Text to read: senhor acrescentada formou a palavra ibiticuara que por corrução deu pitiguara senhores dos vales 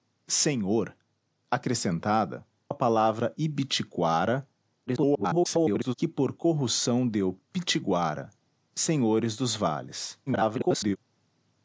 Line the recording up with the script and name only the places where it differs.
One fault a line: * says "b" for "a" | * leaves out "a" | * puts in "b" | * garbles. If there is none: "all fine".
* leaves out "formou"
* garbles
* garbles